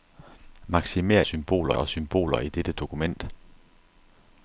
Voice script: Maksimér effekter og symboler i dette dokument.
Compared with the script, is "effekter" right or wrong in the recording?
wrong